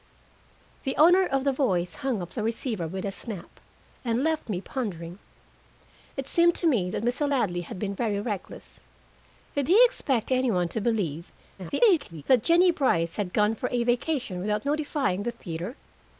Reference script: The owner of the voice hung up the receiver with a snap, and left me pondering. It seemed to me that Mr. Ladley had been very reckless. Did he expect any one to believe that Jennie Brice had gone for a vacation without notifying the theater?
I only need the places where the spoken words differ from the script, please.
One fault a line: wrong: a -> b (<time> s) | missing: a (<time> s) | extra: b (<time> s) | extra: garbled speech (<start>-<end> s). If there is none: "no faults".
extra: garbled speech (11.6-12.2 s)